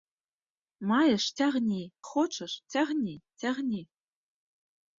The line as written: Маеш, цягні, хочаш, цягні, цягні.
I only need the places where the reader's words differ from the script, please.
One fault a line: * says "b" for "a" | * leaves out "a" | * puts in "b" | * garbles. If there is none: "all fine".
all fine